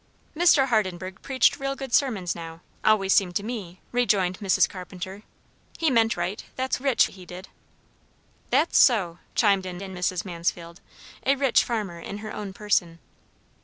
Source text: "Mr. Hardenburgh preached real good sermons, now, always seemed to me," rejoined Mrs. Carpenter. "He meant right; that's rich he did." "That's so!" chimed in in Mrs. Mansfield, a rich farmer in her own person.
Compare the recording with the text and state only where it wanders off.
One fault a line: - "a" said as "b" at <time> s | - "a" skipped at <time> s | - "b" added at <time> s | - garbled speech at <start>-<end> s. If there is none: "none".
none